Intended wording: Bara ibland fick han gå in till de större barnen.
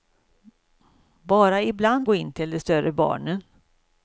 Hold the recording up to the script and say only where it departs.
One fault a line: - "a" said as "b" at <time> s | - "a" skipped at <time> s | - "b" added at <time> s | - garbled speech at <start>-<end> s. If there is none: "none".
- "fick han" skipped at 2.1 s